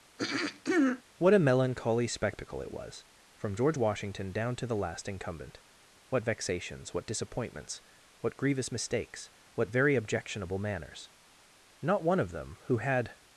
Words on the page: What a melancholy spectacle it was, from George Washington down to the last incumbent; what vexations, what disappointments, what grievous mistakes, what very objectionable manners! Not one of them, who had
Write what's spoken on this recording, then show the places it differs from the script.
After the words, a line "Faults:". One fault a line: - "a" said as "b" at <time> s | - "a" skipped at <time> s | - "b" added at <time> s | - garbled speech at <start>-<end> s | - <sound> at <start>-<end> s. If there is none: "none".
What a melancholy spectacle it was, from George Washington down to the last incumbent; what vexations, what disappointments, what grievous mistakes, what very objectionable manners! Not one of them, who had
Faults:
- throat clearing at 0.2-1.0 s